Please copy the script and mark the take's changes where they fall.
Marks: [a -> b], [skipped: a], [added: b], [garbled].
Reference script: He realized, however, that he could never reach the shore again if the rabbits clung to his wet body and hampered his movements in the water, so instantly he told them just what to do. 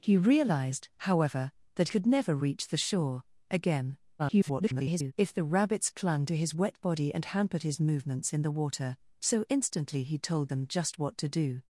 He realized, however, that [skipped: he] could never reach the shore again [garbled] if the rabbits clung to his wet body and hampered his movements in the water, so instantly he told them just what to do.